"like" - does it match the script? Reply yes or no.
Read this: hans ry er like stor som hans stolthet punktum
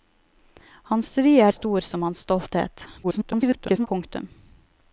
no